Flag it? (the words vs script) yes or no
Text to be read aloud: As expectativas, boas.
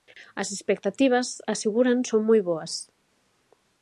yes